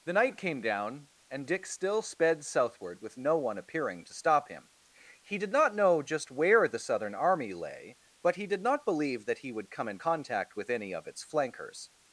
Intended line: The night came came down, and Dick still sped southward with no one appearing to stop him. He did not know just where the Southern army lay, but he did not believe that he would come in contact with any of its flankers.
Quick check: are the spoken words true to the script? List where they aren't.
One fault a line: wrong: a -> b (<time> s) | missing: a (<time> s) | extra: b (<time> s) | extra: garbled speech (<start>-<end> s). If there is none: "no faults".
missing: came (0.6 s)